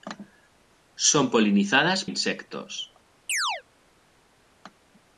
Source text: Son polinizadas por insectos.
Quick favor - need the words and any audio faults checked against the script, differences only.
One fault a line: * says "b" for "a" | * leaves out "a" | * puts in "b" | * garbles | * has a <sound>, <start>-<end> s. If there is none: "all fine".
* leaves out "por"
* has a chirp, 3.3-3.6 s